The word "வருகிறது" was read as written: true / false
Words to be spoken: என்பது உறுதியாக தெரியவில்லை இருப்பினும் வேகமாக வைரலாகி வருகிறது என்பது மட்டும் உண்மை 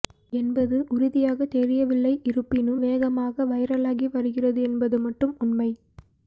true